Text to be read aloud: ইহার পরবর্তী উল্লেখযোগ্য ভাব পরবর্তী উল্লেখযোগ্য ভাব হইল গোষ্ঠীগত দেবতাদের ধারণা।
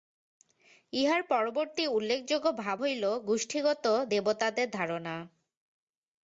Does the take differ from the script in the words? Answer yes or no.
yes